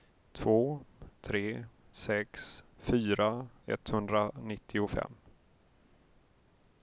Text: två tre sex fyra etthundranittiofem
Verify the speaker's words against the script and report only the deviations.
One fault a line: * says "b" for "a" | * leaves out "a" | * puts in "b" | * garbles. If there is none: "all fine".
all fine